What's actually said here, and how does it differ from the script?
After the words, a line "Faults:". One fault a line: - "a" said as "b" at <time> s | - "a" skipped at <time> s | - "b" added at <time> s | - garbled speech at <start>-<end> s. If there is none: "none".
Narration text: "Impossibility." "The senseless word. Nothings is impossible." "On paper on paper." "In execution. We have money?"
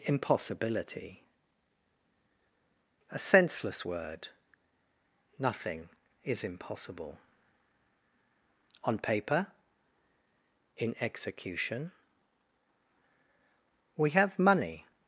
"Impossibility." "A senseless word. Nothing is impossible." "On paper." "In execution. We have money?"
Faults:
- "The" said as "A" at 3.1 s
- "Nothings" said as "Nothing" at 5.4 s
- "on paper" skipped at 9.5 s